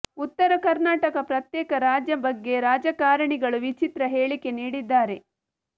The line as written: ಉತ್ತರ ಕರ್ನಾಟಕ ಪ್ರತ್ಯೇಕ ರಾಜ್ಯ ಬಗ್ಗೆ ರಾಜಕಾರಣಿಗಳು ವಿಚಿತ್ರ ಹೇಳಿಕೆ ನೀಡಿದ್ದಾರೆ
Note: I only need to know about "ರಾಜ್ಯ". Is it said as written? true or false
true